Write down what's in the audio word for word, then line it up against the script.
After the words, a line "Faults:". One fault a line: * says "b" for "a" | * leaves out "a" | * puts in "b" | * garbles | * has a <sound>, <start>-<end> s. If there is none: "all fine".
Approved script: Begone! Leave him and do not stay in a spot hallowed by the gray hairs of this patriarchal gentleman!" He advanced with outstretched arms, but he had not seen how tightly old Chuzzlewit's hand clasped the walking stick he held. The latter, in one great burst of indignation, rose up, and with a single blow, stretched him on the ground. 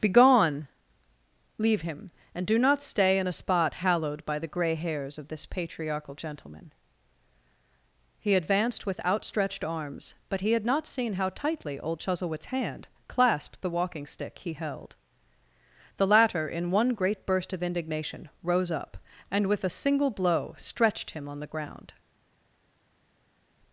Begone! Leave him and do not stay in a spot hallowed by the gray hairs of this patriarchal gentleman!" He advanced with outstretched arms, but he had not seen how tightly old Chuzzlewit's hand clasped the walking stick he held. The latter, in one great burst of indignation, rose up, and with a single blow, stretched him on the ground.
Faults:
all fine